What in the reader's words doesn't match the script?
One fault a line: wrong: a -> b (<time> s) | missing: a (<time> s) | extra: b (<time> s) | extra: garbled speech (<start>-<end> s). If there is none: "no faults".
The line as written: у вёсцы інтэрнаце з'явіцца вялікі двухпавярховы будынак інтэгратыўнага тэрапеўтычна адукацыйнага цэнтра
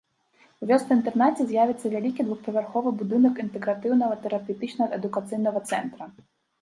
no faults